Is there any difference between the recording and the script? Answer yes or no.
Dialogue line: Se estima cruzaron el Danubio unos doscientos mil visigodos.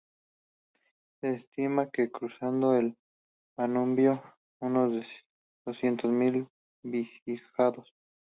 yes